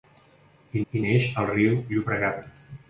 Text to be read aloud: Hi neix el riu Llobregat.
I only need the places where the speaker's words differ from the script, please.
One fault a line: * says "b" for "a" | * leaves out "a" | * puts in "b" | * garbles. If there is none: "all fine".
* puts in "hi"